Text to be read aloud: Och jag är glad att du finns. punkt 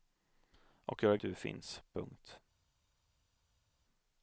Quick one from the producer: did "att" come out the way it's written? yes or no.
no